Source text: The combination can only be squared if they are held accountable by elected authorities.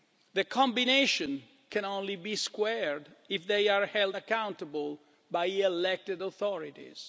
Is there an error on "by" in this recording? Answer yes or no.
no